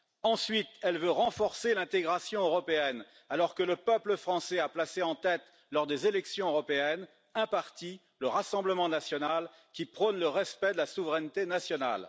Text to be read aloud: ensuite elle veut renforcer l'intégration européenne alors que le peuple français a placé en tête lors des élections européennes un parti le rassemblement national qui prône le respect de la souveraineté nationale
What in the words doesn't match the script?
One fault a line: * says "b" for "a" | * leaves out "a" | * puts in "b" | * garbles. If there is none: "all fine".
all fine